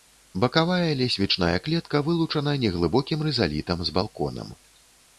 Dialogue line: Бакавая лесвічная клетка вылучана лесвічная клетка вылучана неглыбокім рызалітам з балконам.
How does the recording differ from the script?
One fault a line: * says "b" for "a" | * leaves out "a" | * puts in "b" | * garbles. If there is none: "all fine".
* leaves out "лесвічная клетка вылучана"